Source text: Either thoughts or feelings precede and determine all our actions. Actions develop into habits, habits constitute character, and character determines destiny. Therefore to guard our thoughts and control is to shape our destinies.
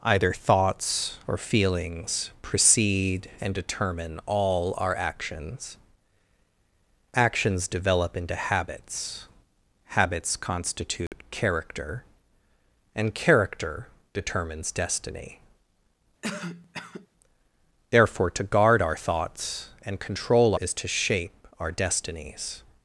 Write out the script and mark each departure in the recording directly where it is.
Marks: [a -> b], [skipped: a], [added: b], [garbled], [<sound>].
Either thoughts or feelings precede and determine all our actions. Actions develop into habits, habits constitute [dropout] character, and character determines destiny. [cough] Therefore to guard our thoughts and control is to shape our destinies.